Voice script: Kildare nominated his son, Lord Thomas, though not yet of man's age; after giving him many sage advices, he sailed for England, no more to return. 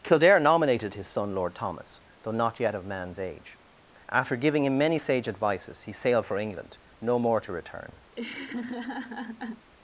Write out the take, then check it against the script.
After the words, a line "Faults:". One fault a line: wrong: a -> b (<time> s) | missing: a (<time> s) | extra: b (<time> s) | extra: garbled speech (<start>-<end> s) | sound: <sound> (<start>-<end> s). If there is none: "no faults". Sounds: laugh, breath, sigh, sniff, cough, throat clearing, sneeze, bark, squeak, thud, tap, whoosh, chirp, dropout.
Kildare nominated his son, Lord Thomas, though not yet of man's age; after giving him many sage advices, he sailed for England, no more to return.
Faults:
sound: laugh (8.1-9.7 s)